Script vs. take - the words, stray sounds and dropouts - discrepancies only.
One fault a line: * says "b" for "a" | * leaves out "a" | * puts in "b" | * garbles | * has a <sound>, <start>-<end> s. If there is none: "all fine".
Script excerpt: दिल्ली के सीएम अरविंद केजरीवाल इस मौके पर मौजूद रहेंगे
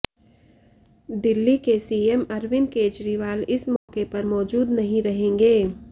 * has a dropout, 3.8-3.9 s
* puts in "नहीं"